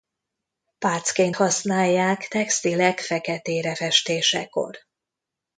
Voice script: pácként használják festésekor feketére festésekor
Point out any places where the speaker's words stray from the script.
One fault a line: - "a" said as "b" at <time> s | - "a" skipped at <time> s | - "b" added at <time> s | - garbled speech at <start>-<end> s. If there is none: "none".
- "festésekor" said as "textilek" at 2.3 s